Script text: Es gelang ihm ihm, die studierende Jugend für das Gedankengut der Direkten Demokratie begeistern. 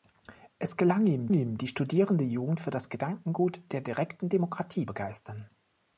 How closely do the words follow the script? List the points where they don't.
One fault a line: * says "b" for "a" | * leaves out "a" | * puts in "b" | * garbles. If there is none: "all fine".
all fine